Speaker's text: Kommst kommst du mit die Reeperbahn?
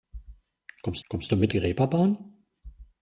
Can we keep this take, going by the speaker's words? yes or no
yes